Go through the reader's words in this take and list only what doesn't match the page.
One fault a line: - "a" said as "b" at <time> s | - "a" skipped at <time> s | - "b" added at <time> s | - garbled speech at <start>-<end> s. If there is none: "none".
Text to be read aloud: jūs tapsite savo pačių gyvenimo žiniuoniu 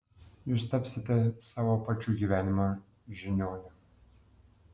none